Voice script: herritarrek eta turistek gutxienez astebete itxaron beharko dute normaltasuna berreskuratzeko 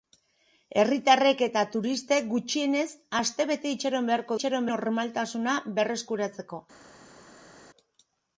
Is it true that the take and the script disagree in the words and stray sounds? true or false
true